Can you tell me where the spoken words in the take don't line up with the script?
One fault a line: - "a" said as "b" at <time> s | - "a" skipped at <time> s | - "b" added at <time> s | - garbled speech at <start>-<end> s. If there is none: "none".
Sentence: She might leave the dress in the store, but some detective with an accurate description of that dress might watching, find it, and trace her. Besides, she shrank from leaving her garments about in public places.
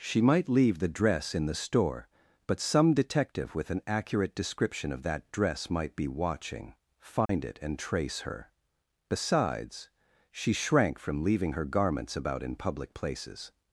- "be" added at 6.0 s